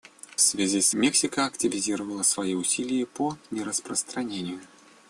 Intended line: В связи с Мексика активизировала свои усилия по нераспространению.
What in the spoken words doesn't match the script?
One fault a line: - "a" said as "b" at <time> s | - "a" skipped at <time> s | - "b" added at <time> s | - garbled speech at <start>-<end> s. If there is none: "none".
none